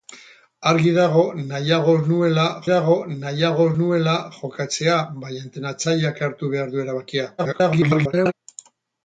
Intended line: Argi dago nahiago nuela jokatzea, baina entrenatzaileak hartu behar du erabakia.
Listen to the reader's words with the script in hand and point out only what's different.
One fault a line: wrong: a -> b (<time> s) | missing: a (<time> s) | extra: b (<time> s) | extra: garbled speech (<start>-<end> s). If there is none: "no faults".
extra: dago nahiago nuela (2.7 s)
extra: garbled speech (7.4-8.3 s)